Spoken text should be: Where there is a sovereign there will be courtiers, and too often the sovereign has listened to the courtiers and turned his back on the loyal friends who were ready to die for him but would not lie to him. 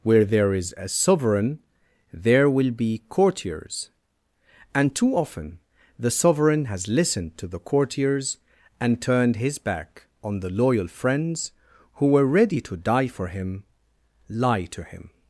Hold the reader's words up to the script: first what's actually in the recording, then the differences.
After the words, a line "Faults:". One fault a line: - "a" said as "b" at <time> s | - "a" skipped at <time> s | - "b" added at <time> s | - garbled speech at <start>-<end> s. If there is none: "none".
Where there is a sovereign there will be courtiers, and too often the sovereign has listened to the courtiers and turned his back on the loyal friends who were ready to die for him lie to him.
Faults:
- "but would not" skipped at 13.6 s